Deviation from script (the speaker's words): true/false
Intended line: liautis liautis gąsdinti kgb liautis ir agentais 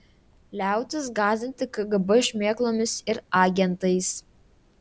true